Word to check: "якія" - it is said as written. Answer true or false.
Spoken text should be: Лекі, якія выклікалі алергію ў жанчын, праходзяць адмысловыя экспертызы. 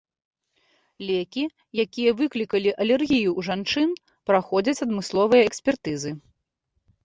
true